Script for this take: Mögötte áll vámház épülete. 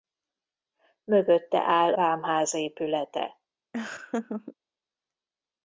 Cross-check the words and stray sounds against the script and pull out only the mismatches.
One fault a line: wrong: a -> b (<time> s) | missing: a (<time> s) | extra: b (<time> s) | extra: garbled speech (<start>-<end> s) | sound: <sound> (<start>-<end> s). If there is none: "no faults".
sound: laugh (3.7-4.6 s)